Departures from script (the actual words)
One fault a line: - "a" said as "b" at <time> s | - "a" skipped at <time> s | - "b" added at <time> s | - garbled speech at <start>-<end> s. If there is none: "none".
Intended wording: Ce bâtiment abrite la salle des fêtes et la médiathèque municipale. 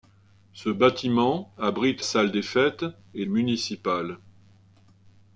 - "la" skipped at 2.0 s
- "la médiathèque" skipped at 3.2 s